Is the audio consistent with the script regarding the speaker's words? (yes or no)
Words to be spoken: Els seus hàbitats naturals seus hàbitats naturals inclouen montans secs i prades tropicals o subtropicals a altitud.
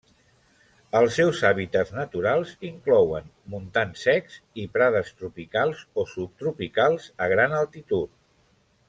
no